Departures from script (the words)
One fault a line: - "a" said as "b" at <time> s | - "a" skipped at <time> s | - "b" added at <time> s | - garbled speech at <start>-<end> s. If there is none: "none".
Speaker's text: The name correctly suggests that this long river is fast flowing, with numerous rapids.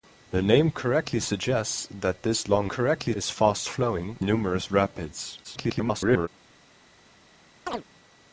- "river" said as "correctly" at 2.6 s
- "with" skipped at 4.2 s
- garbled speech at 5.4-6.3 s